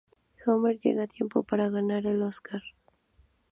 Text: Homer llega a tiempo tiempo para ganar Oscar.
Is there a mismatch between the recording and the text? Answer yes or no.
yes